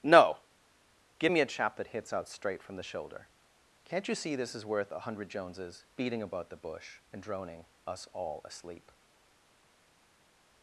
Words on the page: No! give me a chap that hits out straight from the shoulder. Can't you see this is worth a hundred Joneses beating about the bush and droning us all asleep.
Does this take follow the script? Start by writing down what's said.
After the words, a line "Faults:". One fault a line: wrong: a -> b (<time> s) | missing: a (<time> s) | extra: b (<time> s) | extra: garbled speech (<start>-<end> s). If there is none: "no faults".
No! give me a chap that hits out straight from the shoulder. Can't you see this is worth a hundred Joneses beating about the bush and droning us all asleep.
Faults:
no faults